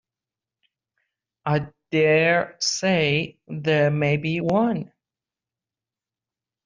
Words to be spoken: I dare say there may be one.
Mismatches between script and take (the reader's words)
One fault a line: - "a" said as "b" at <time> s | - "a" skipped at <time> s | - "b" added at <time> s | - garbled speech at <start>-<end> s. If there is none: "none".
none